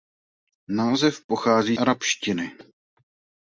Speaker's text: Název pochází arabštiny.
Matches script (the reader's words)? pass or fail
pass